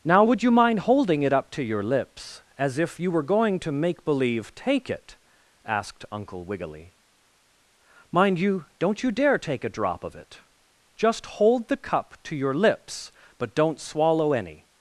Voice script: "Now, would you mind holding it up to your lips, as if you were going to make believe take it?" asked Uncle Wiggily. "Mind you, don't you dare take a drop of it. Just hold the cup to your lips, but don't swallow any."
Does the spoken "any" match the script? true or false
true